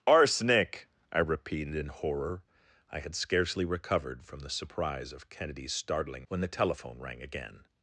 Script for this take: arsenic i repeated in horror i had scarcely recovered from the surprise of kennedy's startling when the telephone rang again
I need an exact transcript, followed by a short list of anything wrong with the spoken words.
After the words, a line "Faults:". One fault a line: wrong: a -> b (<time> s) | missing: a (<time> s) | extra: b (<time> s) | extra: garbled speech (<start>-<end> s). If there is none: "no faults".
arsenic i repeated in horror i had scarcely recovered from the surprise of kennedy's startling when the telephone rang again
Faults:
no faults